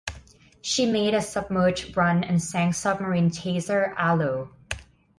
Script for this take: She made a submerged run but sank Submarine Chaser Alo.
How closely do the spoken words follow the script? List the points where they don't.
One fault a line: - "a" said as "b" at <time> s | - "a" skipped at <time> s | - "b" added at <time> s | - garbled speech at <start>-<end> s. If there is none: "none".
- "but" said as "and" at 2.2 s